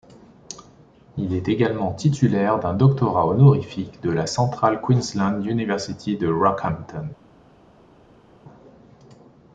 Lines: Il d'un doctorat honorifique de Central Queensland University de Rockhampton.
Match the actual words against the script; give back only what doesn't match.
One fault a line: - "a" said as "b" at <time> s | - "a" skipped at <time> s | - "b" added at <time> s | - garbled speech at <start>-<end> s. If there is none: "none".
- "est également titulaire" added at 1.4 s
- "la" added at 4.1 s